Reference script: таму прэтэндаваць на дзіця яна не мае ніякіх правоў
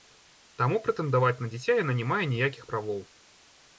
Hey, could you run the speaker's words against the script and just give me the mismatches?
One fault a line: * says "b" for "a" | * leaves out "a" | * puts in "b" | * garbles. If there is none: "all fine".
all fine